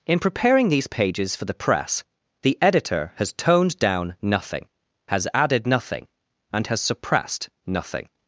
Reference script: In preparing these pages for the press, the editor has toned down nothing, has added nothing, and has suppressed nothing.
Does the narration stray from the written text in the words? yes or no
no